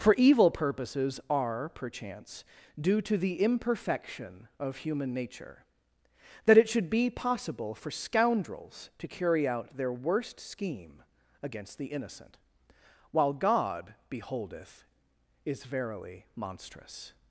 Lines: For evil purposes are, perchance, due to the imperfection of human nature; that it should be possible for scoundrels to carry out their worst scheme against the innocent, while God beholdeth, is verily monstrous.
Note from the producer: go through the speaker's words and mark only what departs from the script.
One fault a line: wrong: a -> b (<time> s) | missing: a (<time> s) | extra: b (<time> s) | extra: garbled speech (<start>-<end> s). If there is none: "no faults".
no faults